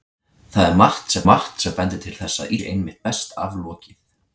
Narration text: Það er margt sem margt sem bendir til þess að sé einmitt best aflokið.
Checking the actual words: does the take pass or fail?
pass